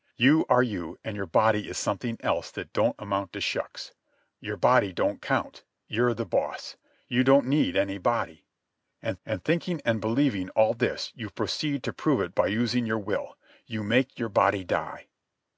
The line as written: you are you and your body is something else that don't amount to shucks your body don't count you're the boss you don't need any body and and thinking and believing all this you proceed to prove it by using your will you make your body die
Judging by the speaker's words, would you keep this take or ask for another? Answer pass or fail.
pass